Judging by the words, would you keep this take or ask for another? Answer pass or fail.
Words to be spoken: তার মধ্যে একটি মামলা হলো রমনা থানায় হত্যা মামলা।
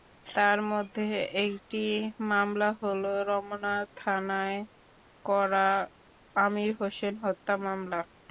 fail